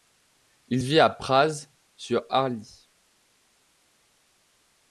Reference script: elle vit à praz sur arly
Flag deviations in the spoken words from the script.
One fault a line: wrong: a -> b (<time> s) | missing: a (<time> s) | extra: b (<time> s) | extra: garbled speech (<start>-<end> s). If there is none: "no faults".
wrong: elle -> il (0.7 s)